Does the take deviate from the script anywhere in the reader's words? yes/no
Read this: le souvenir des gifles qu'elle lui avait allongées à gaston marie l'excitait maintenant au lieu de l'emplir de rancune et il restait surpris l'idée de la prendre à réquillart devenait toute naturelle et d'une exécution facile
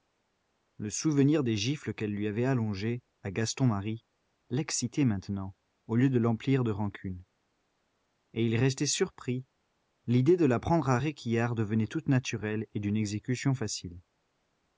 no